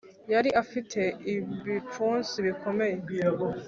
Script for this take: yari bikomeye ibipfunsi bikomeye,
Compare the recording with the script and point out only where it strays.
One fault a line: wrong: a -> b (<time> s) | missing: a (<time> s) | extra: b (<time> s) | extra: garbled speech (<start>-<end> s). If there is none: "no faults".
wrong: bikomeye -> afite (0.6 s)